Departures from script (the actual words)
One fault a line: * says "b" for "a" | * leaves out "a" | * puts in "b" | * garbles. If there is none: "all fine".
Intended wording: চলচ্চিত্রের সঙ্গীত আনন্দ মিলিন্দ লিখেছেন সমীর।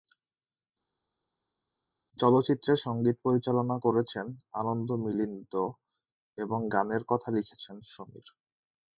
* puts in "পরিচালনা করেছেন"
* puts in "এবং গানের কথা"